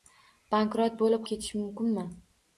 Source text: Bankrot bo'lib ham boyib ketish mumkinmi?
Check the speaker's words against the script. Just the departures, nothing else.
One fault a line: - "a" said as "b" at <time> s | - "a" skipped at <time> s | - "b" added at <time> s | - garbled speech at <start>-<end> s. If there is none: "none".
- "ham boyib" skipped at 1.3 s